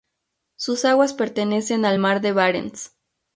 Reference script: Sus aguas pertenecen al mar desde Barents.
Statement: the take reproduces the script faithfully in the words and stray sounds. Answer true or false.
false